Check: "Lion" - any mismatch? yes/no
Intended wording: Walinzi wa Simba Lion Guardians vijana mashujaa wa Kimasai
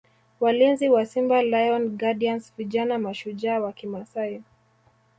no